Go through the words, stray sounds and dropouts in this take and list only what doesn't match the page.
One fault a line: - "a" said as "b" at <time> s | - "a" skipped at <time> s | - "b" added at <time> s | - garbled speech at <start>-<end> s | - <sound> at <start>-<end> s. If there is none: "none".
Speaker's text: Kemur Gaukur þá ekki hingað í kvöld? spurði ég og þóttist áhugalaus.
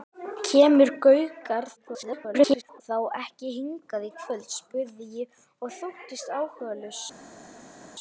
- garbled speech at 1.8-2.8 s